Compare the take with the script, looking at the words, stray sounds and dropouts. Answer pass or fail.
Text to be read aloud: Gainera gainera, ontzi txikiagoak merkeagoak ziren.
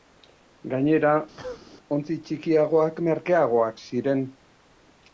fail